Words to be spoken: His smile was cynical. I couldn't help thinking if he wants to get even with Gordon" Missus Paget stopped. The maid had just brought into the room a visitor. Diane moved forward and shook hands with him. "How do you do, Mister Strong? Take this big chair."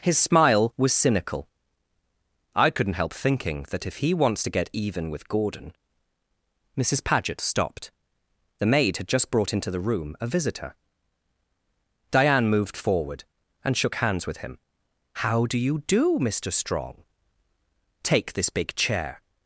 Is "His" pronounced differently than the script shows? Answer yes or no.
no